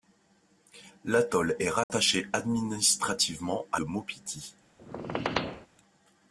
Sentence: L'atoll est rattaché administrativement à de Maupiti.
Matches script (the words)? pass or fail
pass